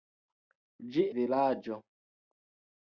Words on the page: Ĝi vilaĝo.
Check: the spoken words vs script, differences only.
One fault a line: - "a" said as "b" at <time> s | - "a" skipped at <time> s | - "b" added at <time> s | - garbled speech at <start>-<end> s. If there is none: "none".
none